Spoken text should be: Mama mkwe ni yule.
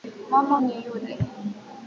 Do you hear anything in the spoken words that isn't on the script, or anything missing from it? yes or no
yes